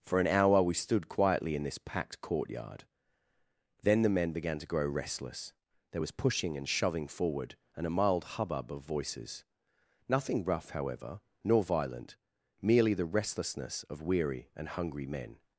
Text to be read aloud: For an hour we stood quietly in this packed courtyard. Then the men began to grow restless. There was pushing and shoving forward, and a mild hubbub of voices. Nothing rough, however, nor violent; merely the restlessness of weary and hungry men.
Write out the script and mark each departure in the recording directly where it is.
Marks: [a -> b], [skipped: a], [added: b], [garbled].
For an hour we stood quietly in this packed courtyard. Then the men began to grow restless. There was pushing and shoving forward, and a mild hubbub of voices. Nothing rough, however, nor violent; merely the restlessness of weary and hungry men.